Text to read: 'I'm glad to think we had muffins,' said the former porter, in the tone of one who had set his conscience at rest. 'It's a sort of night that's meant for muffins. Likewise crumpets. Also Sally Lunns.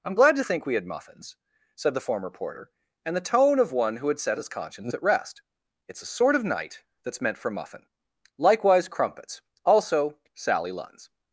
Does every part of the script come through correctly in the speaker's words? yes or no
no